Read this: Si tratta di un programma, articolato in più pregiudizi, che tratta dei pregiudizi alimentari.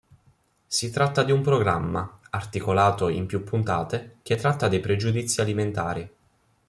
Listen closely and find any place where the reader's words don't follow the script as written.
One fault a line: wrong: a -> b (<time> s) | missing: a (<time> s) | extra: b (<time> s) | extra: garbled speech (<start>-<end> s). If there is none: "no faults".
wrong: pregiudizi -> puntate (3.4 s)